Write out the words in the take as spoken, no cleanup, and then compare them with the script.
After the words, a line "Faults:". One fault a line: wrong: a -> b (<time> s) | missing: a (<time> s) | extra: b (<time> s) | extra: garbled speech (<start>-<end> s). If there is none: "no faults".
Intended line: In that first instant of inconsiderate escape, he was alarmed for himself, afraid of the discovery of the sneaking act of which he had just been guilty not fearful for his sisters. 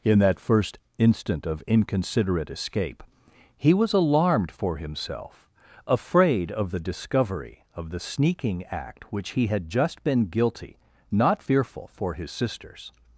In that first instant of inconsiderate escape, he was alarmed for himself, afraid of the discovery of the sneaking act which he had just been guilty not fearful for his sisters.
Faults:
missing: of (9.1 s)